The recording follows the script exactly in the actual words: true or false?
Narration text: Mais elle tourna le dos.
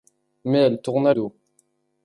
false